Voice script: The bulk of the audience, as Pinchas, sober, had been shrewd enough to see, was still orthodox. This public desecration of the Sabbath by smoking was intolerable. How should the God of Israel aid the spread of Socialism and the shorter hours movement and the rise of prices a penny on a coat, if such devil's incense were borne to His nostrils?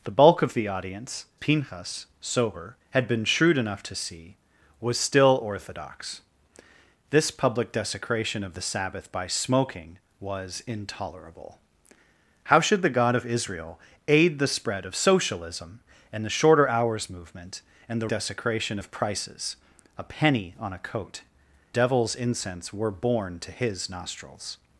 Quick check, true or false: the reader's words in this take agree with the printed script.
false